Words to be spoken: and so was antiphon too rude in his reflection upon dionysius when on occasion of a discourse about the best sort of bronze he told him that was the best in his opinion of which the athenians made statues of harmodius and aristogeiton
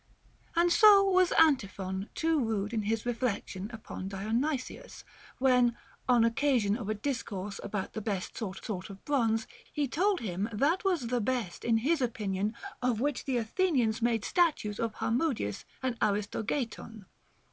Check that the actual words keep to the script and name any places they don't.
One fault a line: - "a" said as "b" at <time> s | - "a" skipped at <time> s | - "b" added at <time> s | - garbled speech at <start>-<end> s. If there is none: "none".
- "sort" added at 8.6 s